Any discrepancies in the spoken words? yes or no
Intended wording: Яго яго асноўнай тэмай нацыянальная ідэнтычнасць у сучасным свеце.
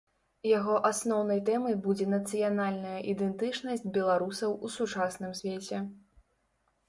yes